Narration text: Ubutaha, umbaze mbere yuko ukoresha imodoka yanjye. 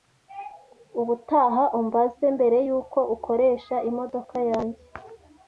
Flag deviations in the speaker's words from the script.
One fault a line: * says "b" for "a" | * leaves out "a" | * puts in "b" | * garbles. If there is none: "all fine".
all fine